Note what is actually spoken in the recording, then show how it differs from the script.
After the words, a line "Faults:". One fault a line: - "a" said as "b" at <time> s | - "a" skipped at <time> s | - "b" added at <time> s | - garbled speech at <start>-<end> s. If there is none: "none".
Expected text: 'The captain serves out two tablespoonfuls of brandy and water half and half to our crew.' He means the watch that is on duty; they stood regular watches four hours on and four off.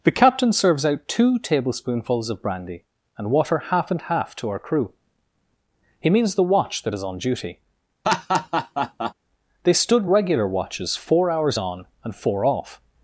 'The captain serves out two tablespoonfuls of brandy and water half and half to our crew.' He means the watch that is on duty; they stood regular watches four hours on and four off.
Faults:
none